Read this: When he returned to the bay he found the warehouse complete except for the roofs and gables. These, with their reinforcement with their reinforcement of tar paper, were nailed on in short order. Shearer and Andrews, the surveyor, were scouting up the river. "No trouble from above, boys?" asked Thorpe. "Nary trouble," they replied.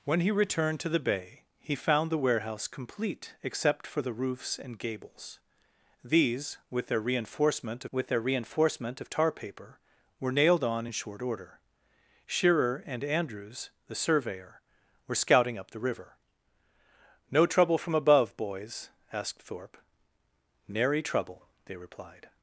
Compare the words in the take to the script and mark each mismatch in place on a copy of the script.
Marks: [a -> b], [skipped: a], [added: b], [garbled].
When he returned to the bay he found the warehouse complete except for the roofs and gables. These, with their reinforcement with their reinforcement of tar paper, were nailed on in short order. Shearer and Andrews, the surveyor, were scouting up the river. "No trouble from above, boys?" asked Thorpe. "Nary trouble," they replied.